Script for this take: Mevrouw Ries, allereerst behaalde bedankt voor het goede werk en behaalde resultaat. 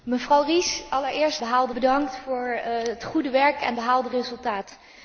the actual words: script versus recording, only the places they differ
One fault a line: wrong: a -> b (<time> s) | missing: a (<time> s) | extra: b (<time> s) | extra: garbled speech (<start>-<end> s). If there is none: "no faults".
no faults